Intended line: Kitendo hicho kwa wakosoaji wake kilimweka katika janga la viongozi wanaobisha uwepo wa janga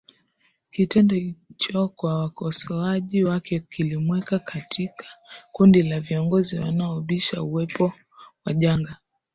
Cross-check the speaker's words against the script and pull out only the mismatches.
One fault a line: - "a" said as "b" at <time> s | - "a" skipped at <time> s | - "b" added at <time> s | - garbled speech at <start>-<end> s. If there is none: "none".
- "janga" said as "kundi" at 5.5 s